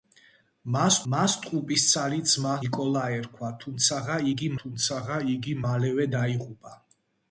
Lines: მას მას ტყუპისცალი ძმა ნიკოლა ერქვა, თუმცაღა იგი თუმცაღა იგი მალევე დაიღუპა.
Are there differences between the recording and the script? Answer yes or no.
no